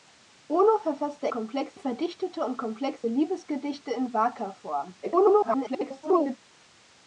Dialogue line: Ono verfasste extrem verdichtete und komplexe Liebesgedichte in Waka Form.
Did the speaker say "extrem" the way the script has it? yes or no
no